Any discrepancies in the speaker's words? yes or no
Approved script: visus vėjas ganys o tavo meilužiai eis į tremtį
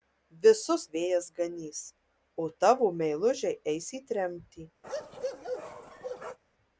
no